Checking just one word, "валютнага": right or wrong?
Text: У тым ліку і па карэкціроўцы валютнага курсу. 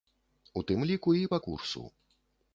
wrong